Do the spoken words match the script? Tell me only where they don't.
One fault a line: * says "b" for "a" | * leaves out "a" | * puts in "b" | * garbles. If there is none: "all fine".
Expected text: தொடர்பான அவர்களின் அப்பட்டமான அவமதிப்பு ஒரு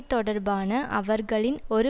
* leaves out "அப்பட்டமான அவமதிப்பு"